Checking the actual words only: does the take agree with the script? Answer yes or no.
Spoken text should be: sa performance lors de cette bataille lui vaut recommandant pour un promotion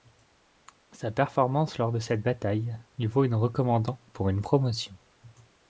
no